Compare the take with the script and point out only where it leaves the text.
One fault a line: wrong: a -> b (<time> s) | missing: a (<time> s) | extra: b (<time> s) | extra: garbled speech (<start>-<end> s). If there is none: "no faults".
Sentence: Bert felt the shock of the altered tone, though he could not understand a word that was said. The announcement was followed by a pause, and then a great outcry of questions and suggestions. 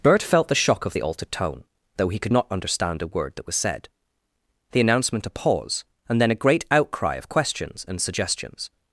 missing: was followed by (5.3 s)